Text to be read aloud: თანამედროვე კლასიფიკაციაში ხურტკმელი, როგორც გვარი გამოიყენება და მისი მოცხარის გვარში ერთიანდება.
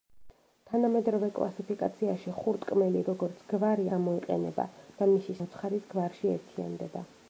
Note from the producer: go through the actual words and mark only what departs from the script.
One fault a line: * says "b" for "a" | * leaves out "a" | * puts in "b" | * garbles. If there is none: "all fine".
all fine